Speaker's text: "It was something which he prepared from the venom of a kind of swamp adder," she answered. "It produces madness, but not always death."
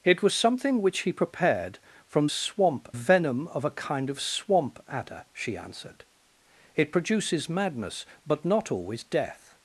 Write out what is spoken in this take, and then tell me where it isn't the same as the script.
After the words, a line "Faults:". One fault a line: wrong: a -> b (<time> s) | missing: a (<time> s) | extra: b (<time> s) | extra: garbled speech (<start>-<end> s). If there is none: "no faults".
"It was something which he prepared from swamp venom of a kind of swamp adder," she answered. "It produces madness, but not always death."
Faults:
wrong: the -> swamp (2.3 s)